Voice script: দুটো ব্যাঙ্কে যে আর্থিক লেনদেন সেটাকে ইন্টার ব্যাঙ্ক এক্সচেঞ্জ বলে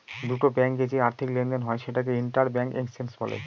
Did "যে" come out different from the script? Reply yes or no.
no